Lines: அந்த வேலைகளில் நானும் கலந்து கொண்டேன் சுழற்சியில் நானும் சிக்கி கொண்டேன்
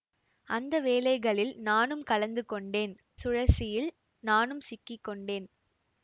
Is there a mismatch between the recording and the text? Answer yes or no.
no